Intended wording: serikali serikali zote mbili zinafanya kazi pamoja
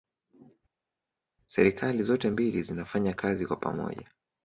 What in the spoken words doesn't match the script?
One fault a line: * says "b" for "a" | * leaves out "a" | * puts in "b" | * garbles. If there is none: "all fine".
* leaves out "serikali"
* puts in "kwa"